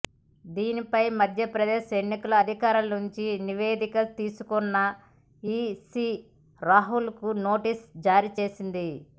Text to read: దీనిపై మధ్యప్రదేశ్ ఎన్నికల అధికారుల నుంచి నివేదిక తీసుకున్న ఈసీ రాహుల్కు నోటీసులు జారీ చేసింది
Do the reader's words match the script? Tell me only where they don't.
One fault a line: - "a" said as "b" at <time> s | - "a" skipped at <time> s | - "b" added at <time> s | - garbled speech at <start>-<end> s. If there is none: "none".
none